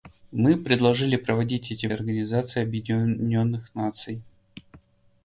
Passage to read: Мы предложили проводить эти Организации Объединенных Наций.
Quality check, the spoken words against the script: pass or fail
pass